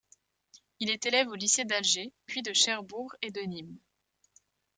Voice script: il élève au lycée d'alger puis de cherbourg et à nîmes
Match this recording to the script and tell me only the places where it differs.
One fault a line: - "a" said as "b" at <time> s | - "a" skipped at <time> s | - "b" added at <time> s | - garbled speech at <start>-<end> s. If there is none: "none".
- "est" added at 0.9 s
- "à" said as "de" at 3.3 s